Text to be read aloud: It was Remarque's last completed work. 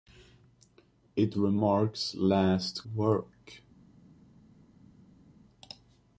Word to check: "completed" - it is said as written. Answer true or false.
false